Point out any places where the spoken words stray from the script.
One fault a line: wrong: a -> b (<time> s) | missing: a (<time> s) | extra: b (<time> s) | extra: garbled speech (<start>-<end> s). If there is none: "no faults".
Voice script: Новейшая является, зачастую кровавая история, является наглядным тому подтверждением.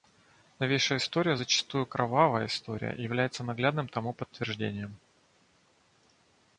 wrong: является -> история (1.0 s)